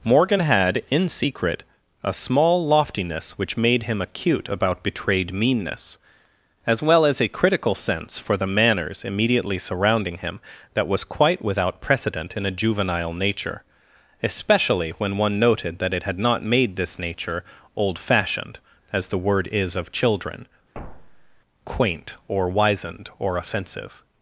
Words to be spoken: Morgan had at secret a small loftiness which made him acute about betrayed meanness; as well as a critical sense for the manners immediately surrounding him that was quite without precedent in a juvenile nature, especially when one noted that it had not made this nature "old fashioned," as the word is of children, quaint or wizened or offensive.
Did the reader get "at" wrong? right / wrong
wrong